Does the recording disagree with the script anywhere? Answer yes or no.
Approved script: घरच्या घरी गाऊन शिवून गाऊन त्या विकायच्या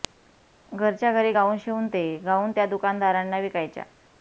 yes